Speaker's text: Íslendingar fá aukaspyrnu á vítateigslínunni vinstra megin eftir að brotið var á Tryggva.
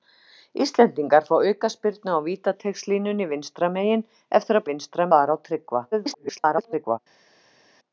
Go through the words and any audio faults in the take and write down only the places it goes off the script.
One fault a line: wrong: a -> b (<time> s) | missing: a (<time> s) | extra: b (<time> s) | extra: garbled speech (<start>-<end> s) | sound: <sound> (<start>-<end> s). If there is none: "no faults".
wrong: brotið -> vinstra (4.7 s)
extra: garbled speech (5.9-7.0 s)